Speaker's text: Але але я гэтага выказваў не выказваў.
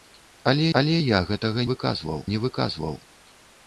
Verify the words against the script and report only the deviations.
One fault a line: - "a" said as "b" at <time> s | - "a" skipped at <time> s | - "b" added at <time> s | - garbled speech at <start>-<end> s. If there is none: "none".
none